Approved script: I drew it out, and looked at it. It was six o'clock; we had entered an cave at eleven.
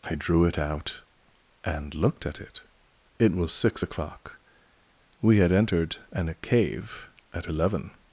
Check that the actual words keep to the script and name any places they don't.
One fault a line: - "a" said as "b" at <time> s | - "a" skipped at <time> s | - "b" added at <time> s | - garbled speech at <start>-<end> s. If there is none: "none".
none